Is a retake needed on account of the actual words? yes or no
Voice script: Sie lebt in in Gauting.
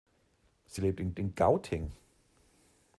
no